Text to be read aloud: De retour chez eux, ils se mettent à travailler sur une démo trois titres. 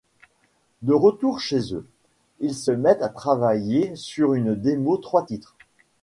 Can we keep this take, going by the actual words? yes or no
yes